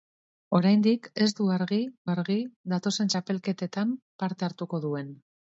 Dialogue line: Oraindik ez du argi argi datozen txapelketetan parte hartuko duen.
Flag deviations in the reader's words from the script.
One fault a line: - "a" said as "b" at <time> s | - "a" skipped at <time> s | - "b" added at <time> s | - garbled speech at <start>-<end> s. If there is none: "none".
none